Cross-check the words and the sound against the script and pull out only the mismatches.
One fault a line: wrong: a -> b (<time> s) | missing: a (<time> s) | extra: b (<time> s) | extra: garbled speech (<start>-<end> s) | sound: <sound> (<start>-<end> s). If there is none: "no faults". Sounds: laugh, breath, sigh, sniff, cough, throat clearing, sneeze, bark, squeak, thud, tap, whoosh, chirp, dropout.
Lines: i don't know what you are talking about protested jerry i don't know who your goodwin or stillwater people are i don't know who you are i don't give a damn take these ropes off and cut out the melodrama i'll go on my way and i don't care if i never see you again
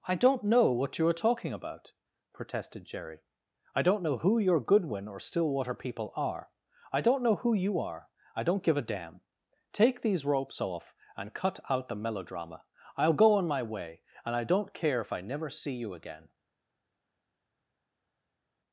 no faults